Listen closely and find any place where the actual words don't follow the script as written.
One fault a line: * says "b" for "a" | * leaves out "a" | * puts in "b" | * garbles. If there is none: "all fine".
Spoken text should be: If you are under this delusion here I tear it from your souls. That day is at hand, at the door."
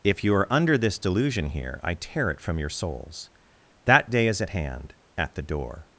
all fine